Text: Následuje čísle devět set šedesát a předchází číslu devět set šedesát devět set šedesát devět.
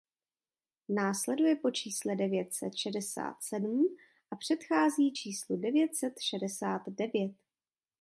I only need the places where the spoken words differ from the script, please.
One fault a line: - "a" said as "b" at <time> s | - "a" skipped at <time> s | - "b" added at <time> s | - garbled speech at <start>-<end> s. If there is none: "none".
- "po" added at 1.6 s
- "sedm" added at 3.4 s
- "set šedesát devět" skipped at 7.4 s